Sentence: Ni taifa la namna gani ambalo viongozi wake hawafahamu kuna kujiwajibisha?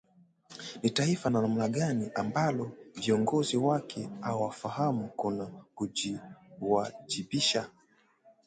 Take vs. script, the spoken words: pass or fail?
pass